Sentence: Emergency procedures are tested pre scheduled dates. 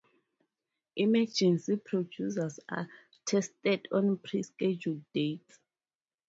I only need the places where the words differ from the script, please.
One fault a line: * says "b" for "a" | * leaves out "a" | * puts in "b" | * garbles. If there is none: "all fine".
* puts in "on"